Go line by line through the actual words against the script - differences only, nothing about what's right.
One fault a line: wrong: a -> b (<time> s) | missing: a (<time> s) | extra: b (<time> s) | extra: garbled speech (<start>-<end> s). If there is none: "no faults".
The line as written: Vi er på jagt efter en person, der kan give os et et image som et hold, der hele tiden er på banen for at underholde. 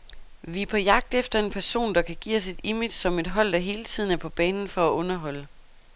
missing: et (2.6 s)